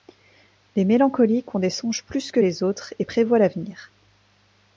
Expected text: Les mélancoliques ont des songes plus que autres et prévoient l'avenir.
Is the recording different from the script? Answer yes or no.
yes